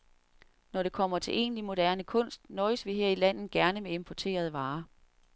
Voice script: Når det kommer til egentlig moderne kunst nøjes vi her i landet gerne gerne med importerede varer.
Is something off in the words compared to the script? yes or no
yes